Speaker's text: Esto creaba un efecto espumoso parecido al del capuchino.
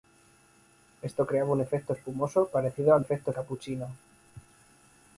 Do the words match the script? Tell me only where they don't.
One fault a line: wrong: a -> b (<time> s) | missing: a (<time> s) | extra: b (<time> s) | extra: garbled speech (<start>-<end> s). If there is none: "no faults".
wrong: del -> efecto (3.0 s)